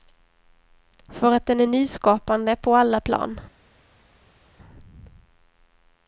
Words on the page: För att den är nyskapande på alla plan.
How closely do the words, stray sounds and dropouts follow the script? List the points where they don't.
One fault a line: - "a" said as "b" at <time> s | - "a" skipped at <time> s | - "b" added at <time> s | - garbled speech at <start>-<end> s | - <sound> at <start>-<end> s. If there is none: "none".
none